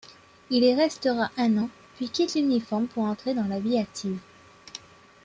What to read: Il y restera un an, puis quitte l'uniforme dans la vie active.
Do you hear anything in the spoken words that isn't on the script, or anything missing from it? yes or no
yes